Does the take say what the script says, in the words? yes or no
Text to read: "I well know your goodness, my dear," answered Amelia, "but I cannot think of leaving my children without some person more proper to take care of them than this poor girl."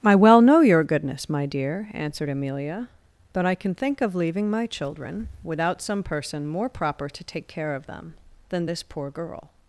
no